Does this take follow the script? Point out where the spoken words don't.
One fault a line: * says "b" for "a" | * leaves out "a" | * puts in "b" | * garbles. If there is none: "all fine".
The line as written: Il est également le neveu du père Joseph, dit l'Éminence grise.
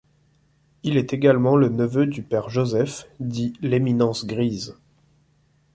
all fine